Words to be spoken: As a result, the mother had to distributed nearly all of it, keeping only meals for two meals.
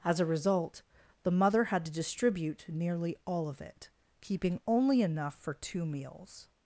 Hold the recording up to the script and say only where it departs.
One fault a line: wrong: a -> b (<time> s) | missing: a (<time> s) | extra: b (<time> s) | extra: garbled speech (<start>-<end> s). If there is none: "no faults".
wrong: distributed -> distribute (1.9 s)
wrong: meals -> enough (5.0 s)